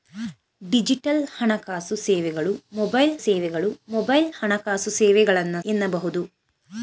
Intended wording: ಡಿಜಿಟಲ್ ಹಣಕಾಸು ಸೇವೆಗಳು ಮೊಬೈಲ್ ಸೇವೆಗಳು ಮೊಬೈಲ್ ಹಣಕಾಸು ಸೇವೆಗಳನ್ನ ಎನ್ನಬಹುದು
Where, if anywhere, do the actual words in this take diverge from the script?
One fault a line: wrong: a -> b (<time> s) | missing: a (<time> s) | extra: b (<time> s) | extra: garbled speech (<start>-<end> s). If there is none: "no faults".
no faults